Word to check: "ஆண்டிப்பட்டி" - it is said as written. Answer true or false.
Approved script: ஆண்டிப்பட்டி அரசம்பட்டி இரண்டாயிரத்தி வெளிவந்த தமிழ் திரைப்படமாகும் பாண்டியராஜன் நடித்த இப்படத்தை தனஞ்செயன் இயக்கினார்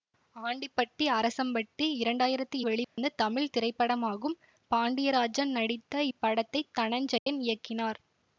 true